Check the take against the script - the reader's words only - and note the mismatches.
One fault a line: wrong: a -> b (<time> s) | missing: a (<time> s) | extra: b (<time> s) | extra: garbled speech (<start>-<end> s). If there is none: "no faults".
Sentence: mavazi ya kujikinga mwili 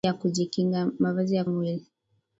missing: kujikinga (1.4 s)